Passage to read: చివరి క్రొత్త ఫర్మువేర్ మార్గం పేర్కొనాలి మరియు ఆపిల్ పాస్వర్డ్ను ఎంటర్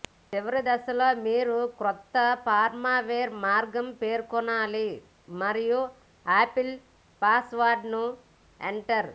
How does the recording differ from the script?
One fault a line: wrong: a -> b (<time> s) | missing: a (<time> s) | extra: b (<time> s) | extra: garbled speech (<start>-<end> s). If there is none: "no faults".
extra: దశలో మీరు (0.6 s)